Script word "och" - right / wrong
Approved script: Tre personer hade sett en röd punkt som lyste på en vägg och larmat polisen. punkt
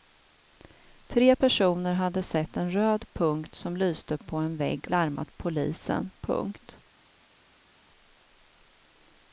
wrong